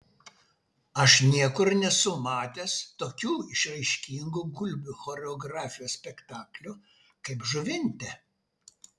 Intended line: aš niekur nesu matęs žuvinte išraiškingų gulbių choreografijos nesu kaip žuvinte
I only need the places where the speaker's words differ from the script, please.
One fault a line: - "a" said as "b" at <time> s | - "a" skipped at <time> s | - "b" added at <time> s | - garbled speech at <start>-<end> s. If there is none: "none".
- "žuvinte" said as "tokių" at 3.0 s
- "nesu" said as "spektaklių" at 6.0 s